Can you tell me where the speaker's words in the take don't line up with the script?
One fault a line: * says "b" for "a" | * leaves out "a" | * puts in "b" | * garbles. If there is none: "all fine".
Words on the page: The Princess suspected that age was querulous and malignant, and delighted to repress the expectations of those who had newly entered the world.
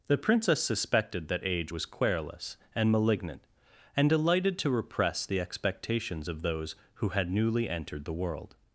all fine